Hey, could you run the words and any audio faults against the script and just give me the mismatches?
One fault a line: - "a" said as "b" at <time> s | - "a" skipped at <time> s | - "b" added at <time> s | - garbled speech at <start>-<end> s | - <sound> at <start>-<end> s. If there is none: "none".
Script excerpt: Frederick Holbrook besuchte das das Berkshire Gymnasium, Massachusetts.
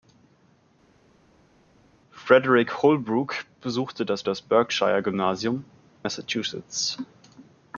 none